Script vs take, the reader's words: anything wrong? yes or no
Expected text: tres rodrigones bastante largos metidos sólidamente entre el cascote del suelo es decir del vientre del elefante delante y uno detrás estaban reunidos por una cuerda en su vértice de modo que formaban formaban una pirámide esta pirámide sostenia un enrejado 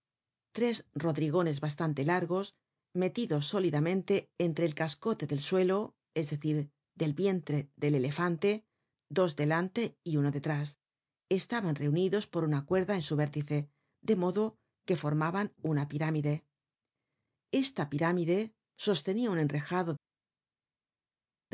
yes